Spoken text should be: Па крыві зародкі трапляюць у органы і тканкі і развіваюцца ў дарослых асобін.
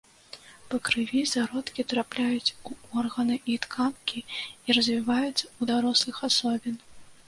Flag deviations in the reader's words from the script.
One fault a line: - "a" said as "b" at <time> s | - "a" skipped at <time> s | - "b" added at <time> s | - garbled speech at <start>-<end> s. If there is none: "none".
none